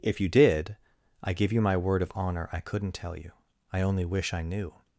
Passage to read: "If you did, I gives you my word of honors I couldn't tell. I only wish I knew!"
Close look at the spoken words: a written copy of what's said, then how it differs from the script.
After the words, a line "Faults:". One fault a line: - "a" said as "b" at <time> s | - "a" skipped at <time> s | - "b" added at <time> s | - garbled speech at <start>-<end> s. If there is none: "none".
"If you did, I give you my word of honor I couldn't tell you. I only wish I knew!"
Faults:
- "gives" said as "give" at 1.3 s
- "honors" said as "honor" at 2.1 s
- "you" added at 3.1 s